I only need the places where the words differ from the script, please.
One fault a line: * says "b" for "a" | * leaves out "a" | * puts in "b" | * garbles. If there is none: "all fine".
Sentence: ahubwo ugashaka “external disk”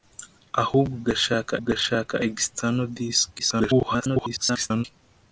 * puts in "ugashaka"
* garbles